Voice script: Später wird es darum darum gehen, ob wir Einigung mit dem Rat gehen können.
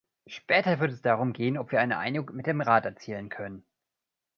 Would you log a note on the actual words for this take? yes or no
yes